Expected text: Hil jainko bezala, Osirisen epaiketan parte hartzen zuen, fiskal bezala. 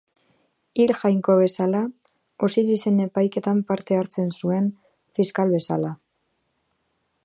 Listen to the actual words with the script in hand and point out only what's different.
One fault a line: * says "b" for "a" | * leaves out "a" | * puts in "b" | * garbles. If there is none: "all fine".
all fine